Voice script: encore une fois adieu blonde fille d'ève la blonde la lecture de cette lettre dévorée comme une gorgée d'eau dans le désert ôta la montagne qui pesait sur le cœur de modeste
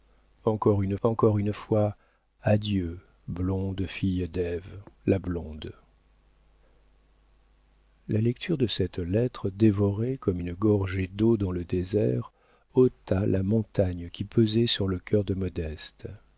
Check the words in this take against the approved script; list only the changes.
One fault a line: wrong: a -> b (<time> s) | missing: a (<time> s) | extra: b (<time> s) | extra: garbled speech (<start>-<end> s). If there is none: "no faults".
extra: encore une (1.0 s)